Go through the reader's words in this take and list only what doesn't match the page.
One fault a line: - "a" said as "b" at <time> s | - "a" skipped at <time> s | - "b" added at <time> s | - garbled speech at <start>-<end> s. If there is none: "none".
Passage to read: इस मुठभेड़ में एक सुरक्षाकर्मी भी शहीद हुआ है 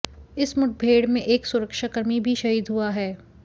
none